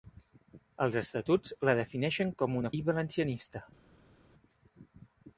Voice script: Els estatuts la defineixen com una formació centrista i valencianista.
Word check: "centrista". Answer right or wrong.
wrong